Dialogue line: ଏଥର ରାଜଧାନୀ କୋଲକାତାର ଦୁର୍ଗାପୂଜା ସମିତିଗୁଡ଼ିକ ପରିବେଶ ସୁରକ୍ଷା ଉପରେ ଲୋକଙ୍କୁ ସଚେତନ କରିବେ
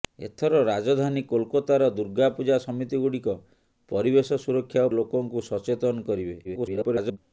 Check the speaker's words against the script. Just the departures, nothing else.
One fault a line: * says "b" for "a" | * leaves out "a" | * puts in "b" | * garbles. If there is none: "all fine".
* leaves out "ଉପରେ"
* garbles